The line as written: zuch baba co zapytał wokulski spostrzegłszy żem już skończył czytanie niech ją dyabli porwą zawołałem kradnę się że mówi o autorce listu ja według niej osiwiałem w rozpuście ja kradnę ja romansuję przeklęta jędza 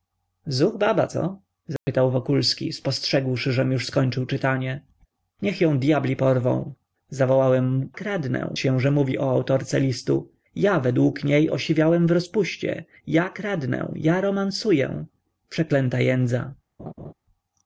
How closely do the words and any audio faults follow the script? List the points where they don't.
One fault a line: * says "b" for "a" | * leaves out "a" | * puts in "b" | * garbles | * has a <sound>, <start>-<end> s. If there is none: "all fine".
* has a dropout, 1.8-1.9 s
* has a laugh, 16.8-17.1 s